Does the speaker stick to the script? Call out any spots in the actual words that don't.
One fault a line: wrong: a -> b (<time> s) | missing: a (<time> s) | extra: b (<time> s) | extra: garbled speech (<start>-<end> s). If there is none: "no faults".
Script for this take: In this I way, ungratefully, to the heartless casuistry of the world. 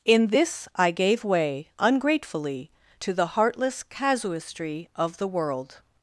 extra: gave (0.9 s)